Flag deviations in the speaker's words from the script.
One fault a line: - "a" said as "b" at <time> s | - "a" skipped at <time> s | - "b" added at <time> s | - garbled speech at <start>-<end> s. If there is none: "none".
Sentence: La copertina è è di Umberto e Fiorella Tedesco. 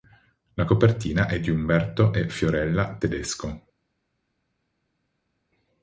- "è" skipped at 1.4 s